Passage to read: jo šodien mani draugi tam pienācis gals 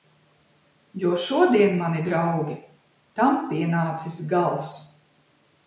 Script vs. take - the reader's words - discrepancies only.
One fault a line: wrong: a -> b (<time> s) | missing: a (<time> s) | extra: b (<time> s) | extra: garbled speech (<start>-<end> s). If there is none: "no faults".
no faults